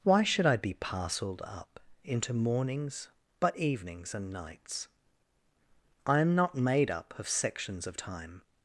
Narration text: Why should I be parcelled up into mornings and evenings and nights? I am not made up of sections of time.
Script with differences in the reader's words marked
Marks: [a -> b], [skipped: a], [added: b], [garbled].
Why should I be parcelled up into mornings [and -> but] evenings and nights? I am not made up of sections of time.